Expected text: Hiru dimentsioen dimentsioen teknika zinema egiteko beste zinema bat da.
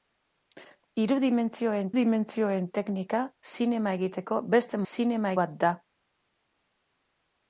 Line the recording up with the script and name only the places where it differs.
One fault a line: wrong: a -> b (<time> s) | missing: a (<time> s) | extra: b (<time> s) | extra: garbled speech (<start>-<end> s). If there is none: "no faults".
no faults